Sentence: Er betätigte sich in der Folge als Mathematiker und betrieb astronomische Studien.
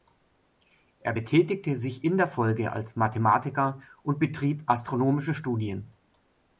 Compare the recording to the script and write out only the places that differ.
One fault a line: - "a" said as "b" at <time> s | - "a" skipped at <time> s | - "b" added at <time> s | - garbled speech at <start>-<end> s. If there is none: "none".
none